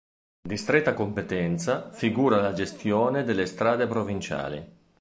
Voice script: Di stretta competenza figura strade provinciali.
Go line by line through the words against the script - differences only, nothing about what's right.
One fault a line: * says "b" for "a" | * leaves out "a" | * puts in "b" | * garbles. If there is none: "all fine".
* puts in "la gestione delle"